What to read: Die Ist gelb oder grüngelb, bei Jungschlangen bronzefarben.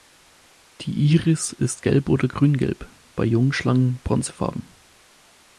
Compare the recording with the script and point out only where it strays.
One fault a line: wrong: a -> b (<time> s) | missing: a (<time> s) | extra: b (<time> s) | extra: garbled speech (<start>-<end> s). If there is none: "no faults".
extra: Iris (1.1 s)